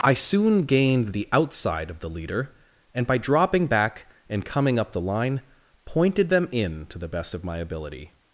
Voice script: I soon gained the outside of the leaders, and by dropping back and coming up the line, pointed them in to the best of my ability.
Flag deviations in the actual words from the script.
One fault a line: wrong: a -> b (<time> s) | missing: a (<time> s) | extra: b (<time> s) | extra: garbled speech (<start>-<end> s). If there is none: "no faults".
wrong: leaders -> leader (2.1 s)